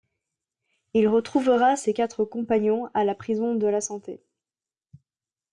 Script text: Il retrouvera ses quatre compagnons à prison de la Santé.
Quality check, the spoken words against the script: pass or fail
fail